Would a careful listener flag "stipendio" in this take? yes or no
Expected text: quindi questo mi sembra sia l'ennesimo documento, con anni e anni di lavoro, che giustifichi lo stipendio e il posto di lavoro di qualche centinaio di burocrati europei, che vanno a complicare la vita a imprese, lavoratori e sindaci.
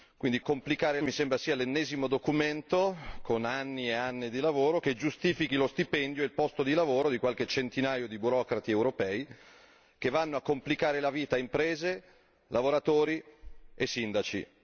no